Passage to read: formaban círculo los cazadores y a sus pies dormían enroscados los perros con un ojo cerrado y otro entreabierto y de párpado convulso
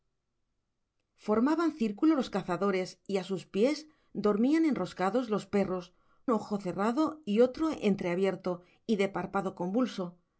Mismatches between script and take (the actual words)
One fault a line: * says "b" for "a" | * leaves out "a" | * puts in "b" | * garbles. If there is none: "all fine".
* leaves out "con un"